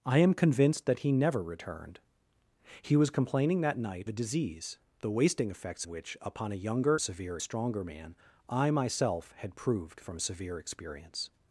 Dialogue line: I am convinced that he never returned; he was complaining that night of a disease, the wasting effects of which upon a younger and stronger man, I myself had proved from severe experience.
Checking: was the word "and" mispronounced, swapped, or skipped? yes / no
yes